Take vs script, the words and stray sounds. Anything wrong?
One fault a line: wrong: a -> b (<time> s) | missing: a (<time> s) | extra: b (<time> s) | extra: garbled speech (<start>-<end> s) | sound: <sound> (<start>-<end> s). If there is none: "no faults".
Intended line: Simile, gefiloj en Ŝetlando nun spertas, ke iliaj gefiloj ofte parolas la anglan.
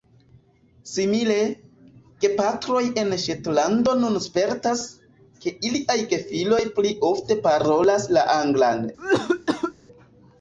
wrong: gefiloj -> gepatroj (2.2 s)
extra: pli (6.8 s)
sound: cough (9.0-9.7 s)